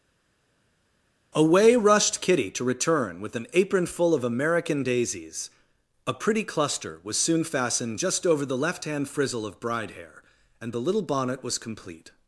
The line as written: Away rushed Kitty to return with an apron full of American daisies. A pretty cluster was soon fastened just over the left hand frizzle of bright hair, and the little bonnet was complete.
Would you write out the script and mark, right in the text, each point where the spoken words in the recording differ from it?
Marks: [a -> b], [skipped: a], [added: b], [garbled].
Away rushed Kitty to return with an apron full of American daisies. A pretty cluster was soon fastened just over the left hand frizzle of [bright -> bride] hair, and the little bonnet was complete.